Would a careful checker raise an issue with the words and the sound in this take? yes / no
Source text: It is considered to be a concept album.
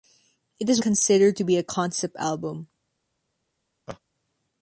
yes